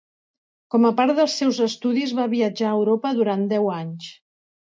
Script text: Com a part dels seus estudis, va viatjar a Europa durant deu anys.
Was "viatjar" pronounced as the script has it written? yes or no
yes